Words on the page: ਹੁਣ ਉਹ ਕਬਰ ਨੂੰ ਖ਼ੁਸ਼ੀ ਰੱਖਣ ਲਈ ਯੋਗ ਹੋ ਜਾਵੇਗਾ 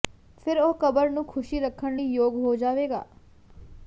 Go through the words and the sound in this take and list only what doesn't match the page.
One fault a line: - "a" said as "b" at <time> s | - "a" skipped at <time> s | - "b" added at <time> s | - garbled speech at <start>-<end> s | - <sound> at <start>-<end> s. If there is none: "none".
- "ਹੁਣ" said as "ਫਿਰ" at 0.5 s